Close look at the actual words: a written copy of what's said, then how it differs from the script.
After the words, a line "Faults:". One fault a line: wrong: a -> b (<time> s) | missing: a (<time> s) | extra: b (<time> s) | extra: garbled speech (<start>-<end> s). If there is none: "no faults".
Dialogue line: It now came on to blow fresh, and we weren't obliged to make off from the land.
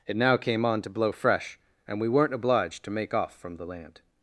It now came on to blow fresh, and we weren't obliged to make off from the land.
Faults:
no faults